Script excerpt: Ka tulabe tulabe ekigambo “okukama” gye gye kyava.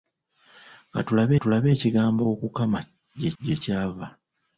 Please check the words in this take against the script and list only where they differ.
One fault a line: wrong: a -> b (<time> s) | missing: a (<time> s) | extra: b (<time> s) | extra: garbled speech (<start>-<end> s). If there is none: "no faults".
no faults